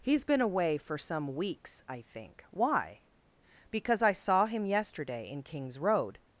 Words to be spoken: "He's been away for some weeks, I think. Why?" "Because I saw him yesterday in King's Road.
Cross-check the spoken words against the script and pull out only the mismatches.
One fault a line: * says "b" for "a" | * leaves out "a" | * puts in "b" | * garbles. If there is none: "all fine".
all fine